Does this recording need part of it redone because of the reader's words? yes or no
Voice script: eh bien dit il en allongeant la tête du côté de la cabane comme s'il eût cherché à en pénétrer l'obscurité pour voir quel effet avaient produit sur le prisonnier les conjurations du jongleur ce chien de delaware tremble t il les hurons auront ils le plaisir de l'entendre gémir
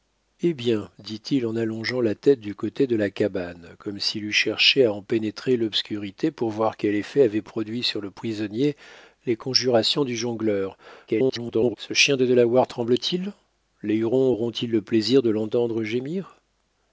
yes